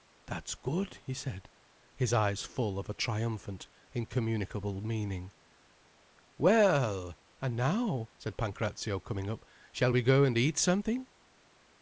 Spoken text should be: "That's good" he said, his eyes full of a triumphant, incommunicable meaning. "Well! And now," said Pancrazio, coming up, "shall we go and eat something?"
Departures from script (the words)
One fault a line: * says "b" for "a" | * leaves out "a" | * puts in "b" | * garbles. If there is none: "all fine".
all fine